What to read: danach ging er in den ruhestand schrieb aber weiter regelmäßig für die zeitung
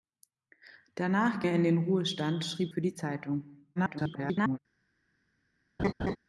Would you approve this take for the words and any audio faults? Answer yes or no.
no